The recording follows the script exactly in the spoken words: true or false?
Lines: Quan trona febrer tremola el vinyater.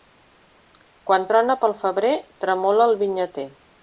false